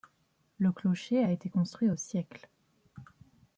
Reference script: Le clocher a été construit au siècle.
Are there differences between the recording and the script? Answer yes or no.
no